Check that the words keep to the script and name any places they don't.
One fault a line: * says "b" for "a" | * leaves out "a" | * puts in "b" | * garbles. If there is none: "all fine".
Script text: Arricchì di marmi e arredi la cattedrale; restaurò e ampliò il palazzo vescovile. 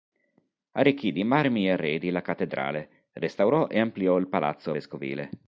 all fine